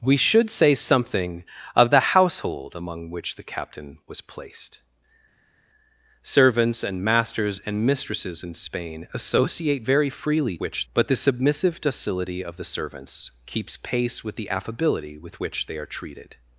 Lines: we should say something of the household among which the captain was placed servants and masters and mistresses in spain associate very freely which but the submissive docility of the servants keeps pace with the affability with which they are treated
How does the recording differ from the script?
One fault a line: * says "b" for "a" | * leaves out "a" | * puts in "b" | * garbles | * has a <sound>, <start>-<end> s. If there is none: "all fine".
all fine